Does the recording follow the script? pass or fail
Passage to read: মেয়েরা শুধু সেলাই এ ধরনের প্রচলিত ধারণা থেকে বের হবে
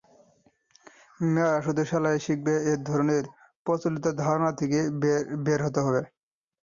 fail